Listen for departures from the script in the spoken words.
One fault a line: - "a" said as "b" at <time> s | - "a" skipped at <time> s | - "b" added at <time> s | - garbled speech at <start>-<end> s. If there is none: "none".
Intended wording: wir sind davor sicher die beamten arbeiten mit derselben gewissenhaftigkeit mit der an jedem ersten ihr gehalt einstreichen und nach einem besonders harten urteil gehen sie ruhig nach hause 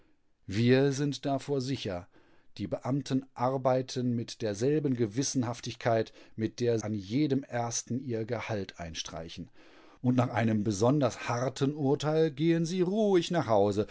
none